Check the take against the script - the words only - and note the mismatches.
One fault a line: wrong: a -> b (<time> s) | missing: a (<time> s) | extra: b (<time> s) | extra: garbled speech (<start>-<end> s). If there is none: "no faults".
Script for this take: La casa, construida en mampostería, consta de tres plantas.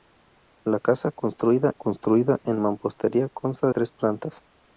extra: construida (1.7 s)
missing: de (3.7 s)